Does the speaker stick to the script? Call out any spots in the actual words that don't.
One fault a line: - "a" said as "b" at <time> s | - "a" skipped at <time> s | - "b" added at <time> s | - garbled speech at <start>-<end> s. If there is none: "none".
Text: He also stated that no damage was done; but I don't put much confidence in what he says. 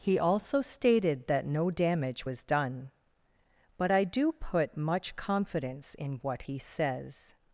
- "don't" said as "do" at 4.0 s